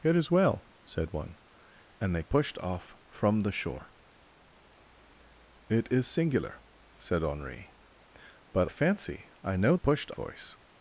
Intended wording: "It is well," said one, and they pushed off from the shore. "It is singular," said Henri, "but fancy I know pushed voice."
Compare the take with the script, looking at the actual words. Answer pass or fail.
pass